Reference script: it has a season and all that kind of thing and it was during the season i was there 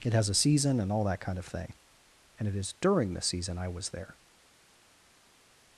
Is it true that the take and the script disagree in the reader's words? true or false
true